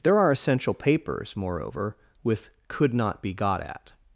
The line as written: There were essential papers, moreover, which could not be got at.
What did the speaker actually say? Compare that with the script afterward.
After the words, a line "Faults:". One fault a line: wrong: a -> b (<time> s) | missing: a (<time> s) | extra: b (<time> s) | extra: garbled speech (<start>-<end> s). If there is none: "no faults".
There are essential papers, moreover, with could not be got at.
Faults:
wrong: were -> are (0.2 s)
wrong: which -> with (2.2 s)